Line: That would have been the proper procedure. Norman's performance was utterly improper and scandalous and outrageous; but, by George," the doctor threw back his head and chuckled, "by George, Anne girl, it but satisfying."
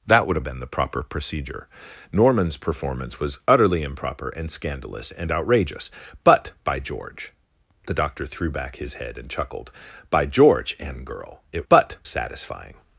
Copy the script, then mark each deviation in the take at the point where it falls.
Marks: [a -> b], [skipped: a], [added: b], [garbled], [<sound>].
That would have been the proper procedure. Norman's performance was utterly improper and scandalous and outrageous; but, by George," the doctor threw back his head and chuckled, "by George, Anne girl, it but satisfying."